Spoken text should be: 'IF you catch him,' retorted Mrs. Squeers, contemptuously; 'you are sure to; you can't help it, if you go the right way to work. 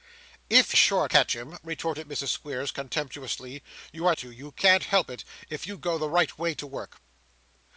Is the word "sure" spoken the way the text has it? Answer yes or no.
no